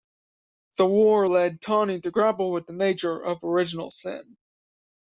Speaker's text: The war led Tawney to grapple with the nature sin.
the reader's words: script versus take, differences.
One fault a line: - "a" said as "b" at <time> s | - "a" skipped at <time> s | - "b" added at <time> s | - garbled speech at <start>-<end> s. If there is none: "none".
- "of original" added at 3.2 s